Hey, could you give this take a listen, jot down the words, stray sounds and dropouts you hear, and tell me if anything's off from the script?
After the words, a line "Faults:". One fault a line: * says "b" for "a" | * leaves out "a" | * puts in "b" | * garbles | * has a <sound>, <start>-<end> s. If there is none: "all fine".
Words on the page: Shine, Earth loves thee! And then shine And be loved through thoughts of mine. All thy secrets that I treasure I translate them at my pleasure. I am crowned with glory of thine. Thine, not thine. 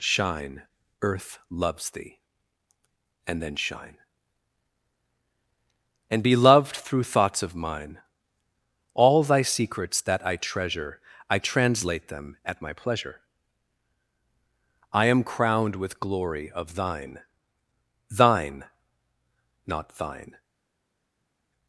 Shine, Earth loves thee! And then shine And be loved through thoughts of mine. All thy secrets that I treasure I translate them at my pleasure. I am crowned with glory of thine. Thine, not thine.
Faults:
all fine